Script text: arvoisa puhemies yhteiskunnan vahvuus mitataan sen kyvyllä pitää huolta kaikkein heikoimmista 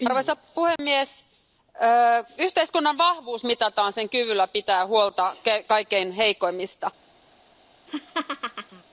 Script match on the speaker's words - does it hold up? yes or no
yes